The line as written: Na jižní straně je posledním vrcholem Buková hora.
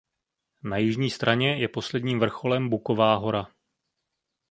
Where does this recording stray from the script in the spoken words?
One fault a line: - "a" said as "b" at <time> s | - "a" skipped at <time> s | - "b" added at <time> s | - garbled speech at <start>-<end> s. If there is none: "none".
none